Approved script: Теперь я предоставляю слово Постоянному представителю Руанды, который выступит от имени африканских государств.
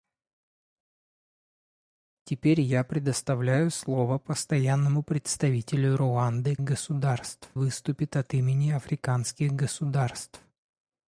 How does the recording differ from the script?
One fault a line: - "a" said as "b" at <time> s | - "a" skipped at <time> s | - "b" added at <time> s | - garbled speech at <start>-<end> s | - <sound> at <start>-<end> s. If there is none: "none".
- "который" said as "государств" at 6.6 s